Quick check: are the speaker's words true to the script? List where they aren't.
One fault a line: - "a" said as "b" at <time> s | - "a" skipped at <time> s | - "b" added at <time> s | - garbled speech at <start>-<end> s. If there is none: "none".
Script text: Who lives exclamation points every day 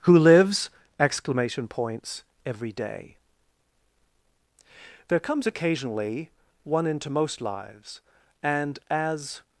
- "There comes occasionally one into most lives and as" added at 5.1 s